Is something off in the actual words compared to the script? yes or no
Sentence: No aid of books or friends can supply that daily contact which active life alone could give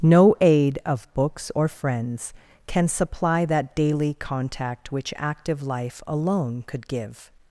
no